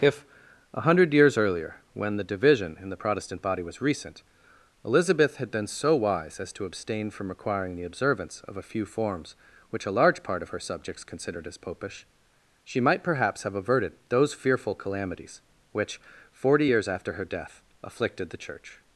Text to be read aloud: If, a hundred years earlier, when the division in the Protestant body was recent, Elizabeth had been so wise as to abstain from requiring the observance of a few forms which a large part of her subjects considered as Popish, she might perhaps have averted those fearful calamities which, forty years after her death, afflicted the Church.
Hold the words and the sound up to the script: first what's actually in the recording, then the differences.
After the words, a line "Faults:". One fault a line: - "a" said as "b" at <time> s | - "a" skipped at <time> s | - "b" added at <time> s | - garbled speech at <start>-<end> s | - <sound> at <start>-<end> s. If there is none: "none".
If, a hundred years earlier, when the division in the Protestant body was recent, Elizabeth had been so wise as to abstain from requiring the observance of a few forms which a large part of her subjects considered as Popish, she might perhaps have averted those fearful calamities which, forty years after her death, afflicted the Church.
Faults:
none